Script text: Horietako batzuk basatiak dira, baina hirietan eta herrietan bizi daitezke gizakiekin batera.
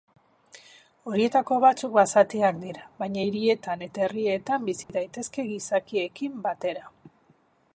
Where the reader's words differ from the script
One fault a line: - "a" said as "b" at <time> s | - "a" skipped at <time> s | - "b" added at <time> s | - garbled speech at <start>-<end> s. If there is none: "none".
none